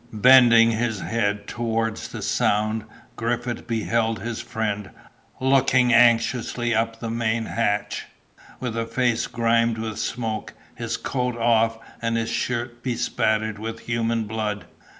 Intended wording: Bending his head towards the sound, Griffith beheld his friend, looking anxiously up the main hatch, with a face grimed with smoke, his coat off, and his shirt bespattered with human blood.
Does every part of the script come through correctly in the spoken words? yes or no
yes